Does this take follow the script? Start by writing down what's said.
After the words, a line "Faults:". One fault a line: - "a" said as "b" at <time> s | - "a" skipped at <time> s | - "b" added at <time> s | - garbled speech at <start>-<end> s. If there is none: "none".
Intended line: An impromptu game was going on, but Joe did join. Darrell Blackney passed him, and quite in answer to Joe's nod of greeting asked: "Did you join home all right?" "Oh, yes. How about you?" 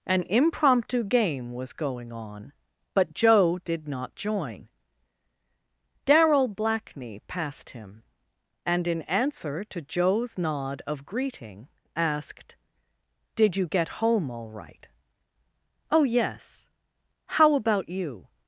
An impromptu game was going on, but Joe did not join. Darrell Blackney passed him, and in answer to Joe's nod of greeting asked: "Did you get home all right?" "Oh, yes. How about you?"
Faults:
- "not" added at 3.9 s
- "quite" skipped at 8.9 s
- "join" said as "get" at 13.7 s